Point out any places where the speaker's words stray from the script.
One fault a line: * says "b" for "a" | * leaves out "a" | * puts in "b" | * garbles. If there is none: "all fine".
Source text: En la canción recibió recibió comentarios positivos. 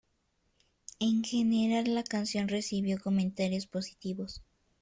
* puts in "general"
* leaves out "recibió"